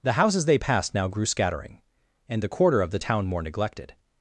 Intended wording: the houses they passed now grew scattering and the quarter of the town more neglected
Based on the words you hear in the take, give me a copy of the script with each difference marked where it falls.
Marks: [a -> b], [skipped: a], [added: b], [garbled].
the houses they passed now grew scattering and the quarter of the town more neglected